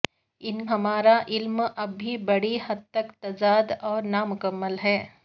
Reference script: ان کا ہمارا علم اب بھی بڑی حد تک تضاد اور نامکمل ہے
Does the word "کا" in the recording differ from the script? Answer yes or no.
yes